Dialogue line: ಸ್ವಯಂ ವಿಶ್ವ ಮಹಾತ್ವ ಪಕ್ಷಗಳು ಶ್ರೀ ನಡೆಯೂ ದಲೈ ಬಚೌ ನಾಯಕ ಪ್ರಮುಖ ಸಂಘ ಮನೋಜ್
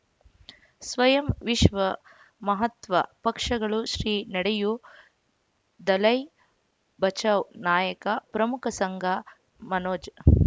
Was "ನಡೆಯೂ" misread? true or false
false